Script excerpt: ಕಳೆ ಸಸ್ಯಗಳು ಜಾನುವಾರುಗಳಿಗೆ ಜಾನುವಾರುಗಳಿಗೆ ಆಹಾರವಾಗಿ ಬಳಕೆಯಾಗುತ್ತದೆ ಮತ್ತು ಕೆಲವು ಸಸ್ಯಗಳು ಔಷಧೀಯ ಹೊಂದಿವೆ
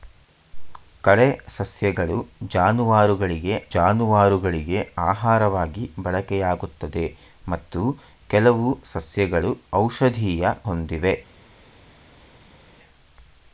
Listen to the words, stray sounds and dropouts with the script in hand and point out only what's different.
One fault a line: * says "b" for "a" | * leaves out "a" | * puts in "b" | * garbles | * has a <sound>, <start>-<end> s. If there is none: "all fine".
all fine